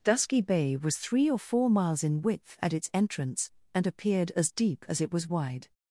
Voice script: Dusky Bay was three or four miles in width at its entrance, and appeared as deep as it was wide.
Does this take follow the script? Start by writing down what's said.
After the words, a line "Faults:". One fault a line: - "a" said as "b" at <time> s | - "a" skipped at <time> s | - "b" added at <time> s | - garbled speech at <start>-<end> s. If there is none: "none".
Dusky Bay was three or four miles in width at its entrance, and appeared as deep as it was wide.
Faults:
none